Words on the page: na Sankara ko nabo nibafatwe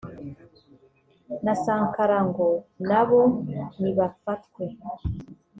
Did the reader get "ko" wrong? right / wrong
wrong